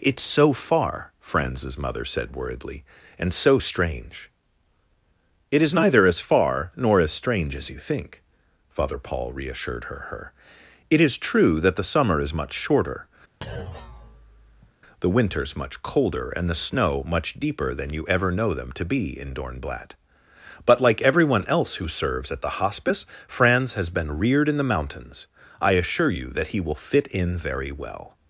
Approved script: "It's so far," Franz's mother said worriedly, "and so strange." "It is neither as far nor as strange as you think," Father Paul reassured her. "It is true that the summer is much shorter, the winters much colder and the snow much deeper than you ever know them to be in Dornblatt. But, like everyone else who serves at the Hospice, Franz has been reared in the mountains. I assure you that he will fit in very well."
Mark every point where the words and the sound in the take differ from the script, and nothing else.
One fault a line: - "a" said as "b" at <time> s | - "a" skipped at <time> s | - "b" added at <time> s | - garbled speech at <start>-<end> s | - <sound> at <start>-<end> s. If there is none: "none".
- "her" added at 10.1 s
- thud at 13.4-14.7 s